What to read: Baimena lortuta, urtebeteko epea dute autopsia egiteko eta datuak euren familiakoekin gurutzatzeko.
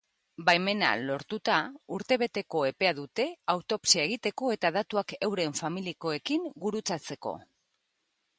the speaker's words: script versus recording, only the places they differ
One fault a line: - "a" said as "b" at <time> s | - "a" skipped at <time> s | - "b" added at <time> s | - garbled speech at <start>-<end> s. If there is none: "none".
none